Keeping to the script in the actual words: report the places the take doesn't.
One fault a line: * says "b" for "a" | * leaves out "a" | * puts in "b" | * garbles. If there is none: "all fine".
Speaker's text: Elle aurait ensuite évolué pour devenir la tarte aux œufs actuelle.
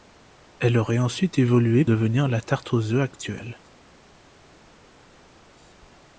* leaves out "pour"